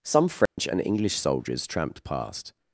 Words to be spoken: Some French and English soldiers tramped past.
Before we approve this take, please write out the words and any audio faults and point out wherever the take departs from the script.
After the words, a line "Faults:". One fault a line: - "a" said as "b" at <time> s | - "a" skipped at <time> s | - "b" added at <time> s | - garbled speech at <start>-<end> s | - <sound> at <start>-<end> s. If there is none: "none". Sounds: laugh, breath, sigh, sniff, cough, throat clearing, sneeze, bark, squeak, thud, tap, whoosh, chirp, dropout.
Some French and English soldiers tramped past.
Faults:
- dropout at 0.5-0.6 s